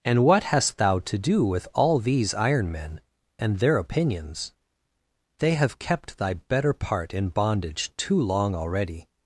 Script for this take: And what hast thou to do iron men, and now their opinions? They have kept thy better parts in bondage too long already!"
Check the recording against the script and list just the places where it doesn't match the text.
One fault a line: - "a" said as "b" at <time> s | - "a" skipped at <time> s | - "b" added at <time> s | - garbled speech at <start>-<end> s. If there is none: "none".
- "with all these" added at 1.4 s
- "now" skipped at 3.6 s
- "parts" said as "part" at 6.7 s